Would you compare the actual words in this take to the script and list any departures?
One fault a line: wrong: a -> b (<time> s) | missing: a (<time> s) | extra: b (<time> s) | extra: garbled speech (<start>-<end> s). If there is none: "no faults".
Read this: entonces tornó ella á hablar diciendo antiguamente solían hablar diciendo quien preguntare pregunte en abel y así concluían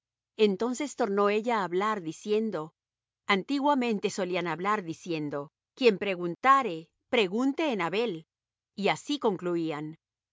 no faults